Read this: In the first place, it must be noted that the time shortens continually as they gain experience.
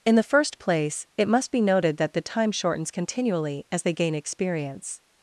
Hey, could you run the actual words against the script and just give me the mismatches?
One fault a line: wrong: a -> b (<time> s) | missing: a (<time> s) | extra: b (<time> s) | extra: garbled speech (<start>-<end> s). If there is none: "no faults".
no faults